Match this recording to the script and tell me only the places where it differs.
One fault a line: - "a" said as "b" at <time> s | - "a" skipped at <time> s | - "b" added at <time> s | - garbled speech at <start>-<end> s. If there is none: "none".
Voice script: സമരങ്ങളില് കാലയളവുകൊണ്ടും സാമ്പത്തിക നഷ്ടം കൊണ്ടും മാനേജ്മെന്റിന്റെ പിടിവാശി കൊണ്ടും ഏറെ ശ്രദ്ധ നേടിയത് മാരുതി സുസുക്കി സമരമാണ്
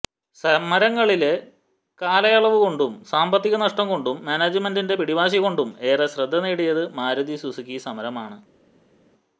none